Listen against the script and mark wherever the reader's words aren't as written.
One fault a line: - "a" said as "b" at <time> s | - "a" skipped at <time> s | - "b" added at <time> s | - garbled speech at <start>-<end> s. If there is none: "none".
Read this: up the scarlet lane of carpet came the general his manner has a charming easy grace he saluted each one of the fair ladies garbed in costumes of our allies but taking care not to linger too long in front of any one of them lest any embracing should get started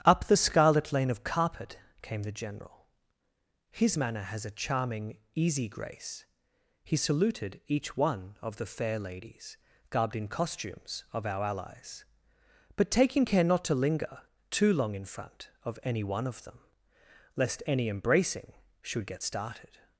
none